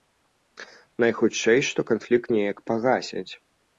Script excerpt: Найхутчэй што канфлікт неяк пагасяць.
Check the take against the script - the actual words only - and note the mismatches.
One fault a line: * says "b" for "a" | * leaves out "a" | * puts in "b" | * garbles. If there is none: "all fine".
all fine